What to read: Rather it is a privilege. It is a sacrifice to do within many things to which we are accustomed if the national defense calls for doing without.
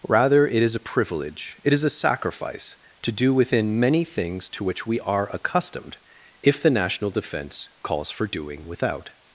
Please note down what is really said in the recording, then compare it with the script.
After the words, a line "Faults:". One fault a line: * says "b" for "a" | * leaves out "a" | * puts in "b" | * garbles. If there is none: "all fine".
Rather it is a privilege. It is a sacrifice to do within many things to which we are accustomed if the national defense calls for doing without.
Faults:
all fine